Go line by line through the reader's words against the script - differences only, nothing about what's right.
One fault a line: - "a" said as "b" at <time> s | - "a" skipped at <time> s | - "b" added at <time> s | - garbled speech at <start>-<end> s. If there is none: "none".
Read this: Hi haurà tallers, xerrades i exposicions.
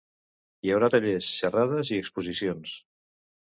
none